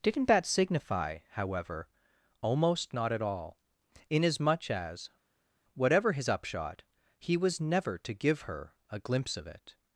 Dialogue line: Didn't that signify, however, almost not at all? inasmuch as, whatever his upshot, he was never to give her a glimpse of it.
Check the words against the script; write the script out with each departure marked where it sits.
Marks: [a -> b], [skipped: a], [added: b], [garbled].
Didn't that signify, however, almost not at all? inasmuch as, whatever his upshot, he was never to give her a glimpse of it.